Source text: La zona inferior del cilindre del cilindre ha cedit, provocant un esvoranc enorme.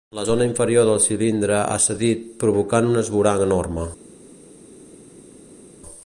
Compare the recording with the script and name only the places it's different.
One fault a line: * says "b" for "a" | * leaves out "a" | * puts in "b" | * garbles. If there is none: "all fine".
* leaves out "del cilindre"